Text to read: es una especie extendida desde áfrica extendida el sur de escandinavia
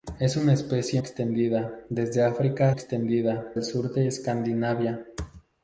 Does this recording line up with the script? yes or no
yes